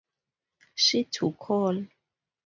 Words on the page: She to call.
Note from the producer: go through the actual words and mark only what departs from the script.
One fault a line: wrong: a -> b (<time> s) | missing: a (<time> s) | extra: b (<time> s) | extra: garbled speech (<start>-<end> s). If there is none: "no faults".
no faults